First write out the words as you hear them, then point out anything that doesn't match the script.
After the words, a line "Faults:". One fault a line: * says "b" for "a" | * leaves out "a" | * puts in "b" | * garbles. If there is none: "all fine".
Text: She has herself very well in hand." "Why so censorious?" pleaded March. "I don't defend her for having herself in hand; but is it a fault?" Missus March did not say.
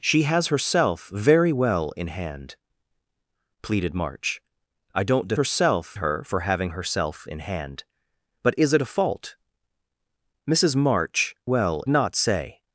She has herself very well in hand?" "Pleaded March. "I don't herself her for having herself in hand; but is it a fault?" Missus March well not say.
Faults:
* leaves out "Why so censorious"
* says "herself" for "defend"
* says "well" for "did"